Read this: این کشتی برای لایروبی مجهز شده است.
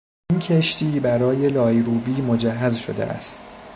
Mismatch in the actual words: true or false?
false